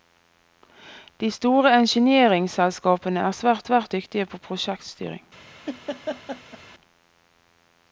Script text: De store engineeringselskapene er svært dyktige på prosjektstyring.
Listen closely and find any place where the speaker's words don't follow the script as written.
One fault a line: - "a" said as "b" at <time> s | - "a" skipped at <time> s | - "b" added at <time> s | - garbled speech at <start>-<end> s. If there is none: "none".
- "svært" added at 3.7 s